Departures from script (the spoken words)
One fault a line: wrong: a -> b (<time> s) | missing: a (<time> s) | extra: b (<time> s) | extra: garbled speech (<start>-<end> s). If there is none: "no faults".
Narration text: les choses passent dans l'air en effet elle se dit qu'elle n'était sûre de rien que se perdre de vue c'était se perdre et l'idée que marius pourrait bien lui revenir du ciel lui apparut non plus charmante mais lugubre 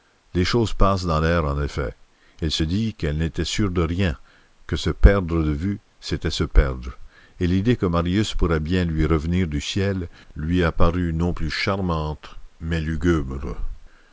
no faults